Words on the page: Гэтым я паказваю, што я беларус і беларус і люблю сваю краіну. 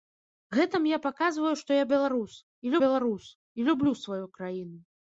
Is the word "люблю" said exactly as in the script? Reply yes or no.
yes